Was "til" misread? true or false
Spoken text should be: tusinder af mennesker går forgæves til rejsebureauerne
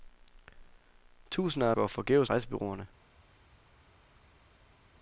true